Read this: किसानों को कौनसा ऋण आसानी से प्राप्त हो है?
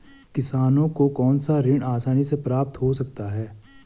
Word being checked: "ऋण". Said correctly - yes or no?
yes